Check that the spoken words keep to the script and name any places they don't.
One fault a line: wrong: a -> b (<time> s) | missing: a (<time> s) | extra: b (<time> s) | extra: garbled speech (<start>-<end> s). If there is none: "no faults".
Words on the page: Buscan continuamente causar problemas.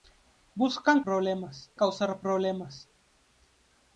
wrong: continuamente -> problemas (1.0 s)